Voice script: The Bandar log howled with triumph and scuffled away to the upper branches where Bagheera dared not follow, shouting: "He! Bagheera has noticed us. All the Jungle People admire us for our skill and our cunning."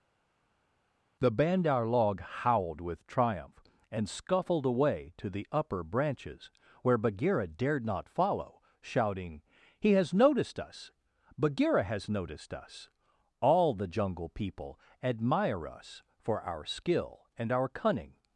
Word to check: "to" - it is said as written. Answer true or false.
true